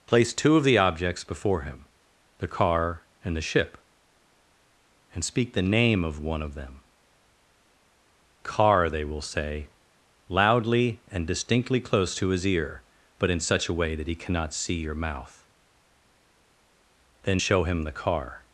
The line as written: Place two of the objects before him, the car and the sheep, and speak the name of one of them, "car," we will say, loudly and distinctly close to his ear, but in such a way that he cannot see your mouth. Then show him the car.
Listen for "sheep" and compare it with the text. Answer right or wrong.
wrong